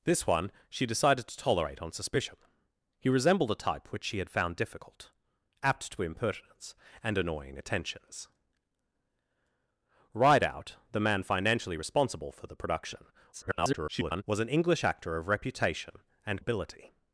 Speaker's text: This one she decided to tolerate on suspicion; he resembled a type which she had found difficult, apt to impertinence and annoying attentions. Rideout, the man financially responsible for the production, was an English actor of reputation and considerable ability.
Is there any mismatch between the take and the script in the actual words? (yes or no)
yes